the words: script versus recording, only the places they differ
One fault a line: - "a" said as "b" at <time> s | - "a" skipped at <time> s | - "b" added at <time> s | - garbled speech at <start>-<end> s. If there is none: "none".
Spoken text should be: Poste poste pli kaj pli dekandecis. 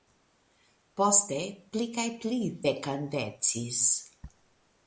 - "poste" skipped at 1.4 s